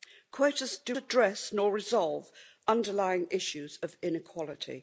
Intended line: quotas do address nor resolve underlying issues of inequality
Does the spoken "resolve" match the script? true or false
true